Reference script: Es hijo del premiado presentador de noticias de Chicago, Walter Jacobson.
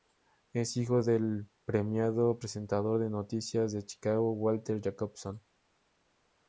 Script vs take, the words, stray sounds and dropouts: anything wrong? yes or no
no